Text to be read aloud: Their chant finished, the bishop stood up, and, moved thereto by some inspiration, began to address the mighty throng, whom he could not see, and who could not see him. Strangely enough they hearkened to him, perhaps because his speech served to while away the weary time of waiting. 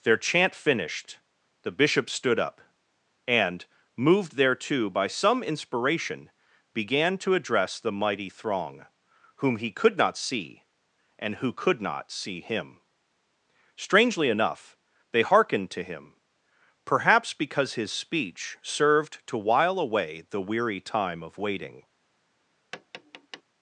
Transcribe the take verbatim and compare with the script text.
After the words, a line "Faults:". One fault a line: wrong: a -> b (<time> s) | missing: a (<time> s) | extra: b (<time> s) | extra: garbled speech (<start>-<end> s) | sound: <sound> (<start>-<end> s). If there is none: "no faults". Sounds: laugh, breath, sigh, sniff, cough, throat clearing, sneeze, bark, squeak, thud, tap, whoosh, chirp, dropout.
Their chant finished, the bishop stood up, and, moved thereto by some inspiration, began to address the mighty throng, whom he could not see, and who could not see him. Strangely enough they hearkened to him, perhaps because his speech served to while away the weary time of waiting.
Faults:
sound: tap (22.7-23.4 s)